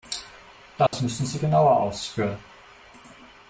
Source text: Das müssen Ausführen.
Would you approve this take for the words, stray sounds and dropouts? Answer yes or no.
no